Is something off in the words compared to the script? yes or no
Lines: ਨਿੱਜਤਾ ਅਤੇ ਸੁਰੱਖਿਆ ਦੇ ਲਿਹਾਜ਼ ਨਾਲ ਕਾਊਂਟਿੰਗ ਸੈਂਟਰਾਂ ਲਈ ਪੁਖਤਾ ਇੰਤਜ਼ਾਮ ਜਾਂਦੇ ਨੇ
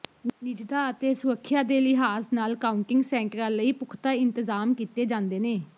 yes